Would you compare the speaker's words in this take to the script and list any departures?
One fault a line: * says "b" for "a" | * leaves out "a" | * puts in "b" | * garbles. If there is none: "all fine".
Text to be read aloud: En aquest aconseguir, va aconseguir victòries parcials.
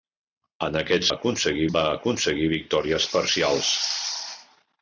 all fine